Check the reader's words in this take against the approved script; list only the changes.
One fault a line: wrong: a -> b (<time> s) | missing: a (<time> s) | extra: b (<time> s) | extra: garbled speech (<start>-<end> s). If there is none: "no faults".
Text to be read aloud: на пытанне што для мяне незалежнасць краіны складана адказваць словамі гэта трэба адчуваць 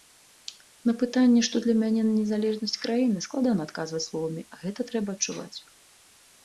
no faults